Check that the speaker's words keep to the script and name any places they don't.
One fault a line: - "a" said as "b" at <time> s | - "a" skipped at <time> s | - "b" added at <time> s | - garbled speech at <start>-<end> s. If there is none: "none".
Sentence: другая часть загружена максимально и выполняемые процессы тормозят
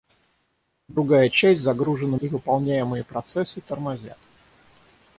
- "максимально" skipped at 2.2 s